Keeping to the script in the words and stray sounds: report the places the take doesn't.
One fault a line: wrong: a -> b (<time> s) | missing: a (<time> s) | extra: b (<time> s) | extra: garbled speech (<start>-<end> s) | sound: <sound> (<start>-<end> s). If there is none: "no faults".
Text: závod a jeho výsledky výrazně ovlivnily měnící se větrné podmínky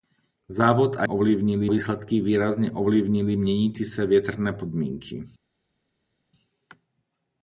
wrong: jeho -> ovlivnily (1.0 s)